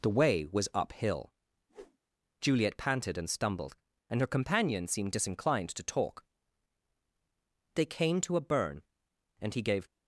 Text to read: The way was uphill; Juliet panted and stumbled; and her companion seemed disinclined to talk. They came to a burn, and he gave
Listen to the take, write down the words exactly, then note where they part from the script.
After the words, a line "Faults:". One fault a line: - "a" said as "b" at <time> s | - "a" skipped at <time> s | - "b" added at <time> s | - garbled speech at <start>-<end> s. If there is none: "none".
The way was uphill; Juliet panted and stumbled; and her companion seemed disinclined to talk. They came to a burn, and he gave
Faults:
none